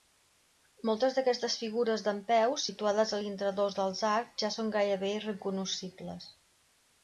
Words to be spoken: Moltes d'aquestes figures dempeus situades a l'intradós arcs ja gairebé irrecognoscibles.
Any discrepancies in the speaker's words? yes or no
yes